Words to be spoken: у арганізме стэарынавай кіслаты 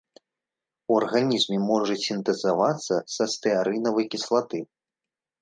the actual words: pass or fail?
fail